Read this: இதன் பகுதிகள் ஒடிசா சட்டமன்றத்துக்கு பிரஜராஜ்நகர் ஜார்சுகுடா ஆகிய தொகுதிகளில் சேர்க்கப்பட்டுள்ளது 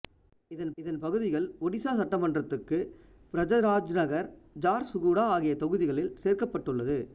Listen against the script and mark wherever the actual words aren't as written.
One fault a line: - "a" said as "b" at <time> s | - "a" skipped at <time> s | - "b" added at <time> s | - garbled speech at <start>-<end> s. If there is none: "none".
- "இதன்" added at 0.8 s